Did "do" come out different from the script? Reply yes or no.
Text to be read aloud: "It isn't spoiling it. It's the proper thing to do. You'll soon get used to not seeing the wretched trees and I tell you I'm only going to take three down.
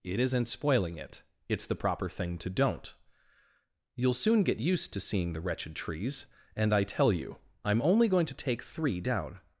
yes